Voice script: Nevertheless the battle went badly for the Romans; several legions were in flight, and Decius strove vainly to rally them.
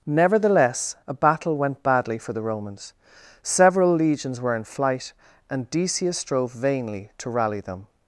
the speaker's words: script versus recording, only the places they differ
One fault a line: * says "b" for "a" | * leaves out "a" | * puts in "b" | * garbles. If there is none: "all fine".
* says "a" for "the"